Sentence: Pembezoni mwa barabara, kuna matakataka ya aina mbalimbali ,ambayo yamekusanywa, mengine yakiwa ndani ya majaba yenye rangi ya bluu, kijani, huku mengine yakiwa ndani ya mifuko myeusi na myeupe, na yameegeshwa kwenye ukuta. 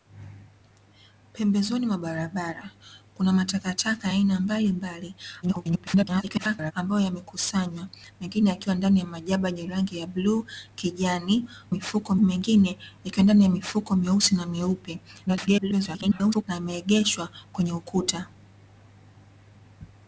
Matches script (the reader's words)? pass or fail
fail